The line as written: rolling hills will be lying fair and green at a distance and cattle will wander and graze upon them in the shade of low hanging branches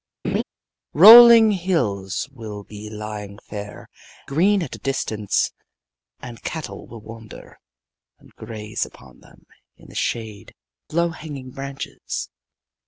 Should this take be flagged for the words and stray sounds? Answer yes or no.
yes